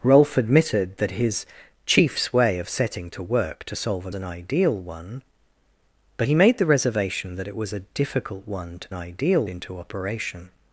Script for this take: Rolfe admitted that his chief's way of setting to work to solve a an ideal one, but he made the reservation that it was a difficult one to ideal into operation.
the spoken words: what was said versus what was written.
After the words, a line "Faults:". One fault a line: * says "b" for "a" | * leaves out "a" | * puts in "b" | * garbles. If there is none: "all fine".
Rolfe admitted that his chief's way of setting to work to solve a an ideal one, but he made the reservation that it was a difficult one to ideal into operation.
Faults:
all fine